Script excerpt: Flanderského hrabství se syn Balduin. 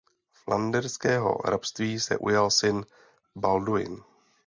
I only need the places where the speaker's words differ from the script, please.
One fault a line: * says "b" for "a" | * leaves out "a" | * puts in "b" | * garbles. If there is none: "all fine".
* puts in "ujal"